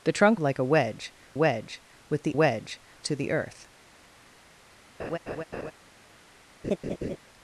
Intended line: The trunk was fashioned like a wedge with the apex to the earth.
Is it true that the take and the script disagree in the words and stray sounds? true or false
true